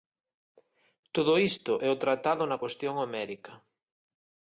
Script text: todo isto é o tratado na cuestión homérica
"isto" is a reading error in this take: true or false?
false